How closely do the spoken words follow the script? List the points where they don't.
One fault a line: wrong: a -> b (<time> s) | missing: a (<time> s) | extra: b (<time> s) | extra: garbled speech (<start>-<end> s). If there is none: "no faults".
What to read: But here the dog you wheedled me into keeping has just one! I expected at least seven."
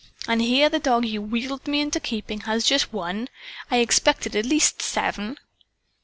wrong: But -> And (0.3 s)